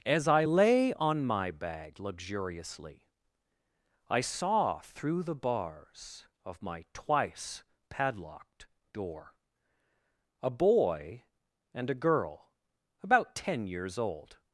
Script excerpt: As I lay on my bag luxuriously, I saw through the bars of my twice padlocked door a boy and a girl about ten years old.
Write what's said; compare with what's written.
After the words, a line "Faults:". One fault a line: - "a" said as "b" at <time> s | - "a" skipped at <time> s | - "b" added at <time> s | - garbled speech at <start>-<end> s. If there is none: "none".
As I lay on my bag luxuriously, I saw through the bars of my twice padlocked door a boy and a girl about ten years old.
Faults:
none